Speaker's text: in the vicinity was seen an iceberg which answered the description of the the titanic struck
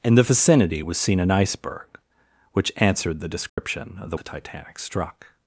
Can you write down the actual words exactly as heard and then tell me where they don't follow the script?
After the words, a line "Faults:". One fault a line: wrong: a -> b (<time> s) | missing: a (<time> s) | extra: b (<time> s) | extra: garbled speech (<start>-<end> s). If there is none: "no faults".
in the vicinity was seen an iceberg which answered the description of the the titanic struck
Faults:
no faults